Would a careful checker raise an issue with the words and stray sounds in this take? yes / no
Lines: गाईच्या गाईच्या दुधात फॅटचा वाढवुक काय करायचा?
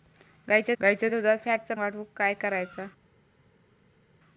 no